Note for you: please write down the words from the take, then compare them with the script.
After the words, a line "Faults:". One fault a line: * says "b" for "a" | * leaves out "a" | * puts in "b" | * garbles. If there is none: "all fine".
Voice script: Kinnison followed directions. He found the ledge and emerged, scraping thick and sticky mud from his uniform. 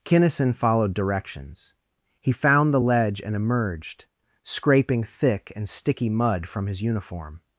Kinnison followed directions. He found the ledge and emerged, scraping thick and sticky mud from his uniform.
Faults:
all fine